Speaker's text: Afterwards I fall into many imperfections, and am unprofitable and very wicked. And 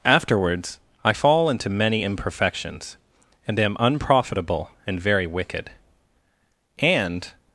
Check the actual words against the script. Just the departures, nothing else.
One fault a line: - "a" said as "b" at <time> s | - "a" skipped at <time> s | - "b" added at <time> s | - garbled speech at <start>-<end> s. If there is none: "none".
none